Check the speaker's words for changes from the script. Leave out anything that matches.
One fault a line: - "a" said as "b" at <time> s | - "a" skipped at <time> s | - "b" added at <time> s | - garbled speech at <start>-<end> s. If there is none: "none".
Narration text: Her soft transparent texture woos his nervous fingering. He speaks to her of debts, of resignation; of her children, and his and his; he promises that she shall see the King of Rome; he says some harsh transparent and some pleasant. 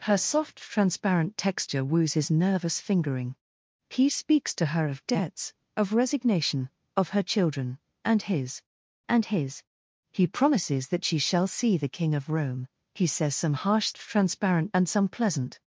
none